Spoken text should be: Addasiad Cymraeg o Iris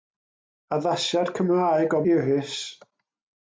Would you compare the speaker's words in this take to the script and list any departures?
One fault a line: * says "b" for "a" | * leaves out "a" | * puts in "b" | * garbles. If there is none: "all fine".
all fine